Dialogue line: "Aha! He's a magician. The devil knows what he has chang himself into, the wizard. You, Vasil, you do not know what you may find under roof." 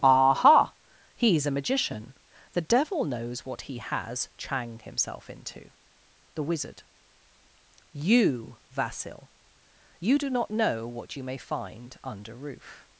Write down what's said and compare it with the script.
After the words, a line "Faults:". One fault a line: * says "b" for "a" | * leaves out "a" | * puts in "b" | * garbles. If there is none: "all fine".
"Aha! He's a magician. The devil knows what he has chang himself into, the wizard. You, Vasil, you do not know what you may find under roof."
Faults:
all fine